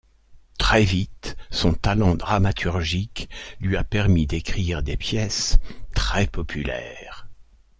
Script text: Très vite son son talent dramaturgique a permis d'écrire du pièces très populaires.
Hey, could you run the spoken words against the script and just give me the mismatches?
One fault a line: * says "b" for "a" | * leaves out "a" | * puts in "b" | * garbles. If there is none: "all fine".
* leaves out "son"
* puts in "lui"
* says "des" for "du"